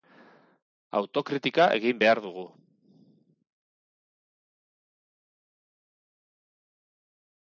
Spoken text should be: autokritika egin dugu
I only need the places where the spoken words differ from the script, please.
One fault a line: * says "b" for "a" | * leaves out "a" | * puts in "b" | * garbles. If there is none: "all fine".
* puts in "behar"